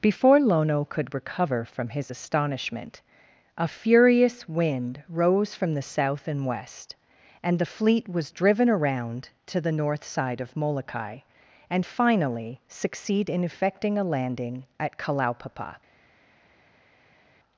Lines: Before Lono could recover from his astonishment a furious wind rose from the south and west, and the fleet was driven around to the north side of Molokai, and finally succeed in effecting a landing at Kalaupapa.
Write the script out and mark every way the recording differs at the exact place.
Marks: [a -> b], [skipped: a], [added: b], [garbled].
Before Lono could recover from his astonishment a furious wind rose from the south and west, and the fleet was driven around to the north side of Molokai, and finally succeed in effecting a landing at Kalaupapa.